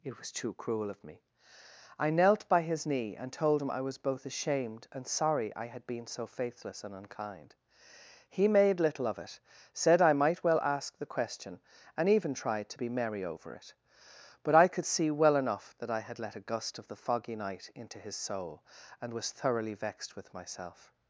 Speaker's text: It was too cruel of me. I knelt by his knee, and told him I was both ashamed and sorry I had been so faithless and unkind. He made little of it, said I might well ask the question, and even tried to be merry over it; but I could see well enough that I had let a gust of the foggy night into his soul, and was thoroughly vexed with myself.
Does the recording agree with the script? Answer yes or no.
yes